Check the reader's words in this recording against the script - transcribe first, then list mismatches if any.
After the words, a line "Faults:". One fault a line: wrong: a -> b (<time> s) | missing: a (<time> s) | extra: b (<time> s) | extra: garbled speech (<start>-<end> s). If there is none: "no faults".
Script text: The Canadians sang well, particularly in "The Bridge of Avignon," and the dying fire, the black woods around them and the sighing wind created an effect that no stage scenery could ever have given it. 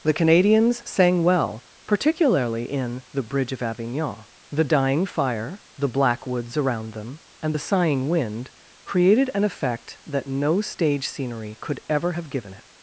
The Canadians sang well, particularly in "The Bridge of Avignon," the dying fire, the black woods around them and the sighing wind created an effect that no stage scenery could ever have given it.
Faults:
missing: and (4.2 s)